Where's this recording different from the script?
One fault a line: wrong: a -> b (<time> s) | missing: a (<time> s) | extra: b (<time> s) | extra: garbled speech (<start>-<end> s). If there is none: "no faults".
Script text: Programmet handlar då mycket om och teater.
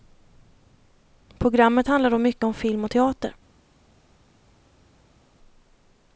extra: film (2.5 s)